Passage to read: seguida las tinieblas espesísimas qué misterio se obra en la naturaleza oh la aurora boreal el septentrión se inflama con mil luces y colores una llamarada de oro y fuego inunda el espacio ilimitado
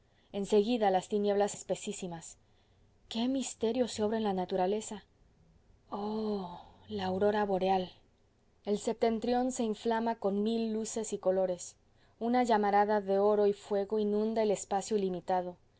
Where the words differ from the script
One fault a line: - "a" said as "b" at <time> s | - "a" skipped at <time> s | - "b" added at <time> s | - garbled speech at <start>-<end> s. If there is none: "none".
none